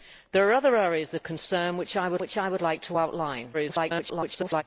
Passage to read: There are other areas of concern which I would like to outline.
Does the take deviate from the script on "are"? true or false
false